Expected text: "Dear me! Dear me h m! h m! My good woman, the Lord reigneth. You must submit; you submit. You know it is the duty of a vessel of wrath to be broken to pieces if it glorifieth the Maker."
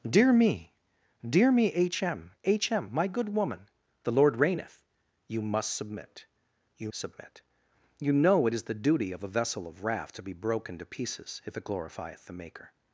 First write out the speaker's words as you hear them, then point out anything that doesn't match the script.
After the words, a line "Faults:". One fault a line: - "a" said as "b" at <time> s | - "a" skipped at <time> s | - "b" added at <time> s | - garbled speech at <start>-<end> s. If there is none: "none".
"Dear me! Dear me h m! h m! My good woman, the Lord reigneth. You must submit; you submit. You know it is the duty of a vessel of wrath to be broken to pieces if it glorifieth the Maker."
Faults:
none